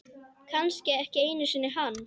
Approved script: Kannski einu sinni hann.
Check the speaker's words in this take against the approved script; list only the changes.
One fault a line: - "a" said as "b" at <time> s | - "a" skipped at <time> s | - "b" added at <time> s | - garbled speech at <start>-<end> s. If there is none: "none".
- "ekki" added at 1.0 s